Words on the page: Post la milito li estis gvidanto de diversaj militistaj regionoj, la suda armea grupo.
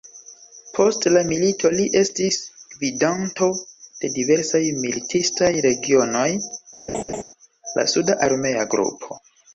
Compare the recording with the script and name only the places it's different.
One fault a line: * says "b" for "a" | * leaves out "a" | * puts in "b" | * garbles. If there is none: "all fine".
all fine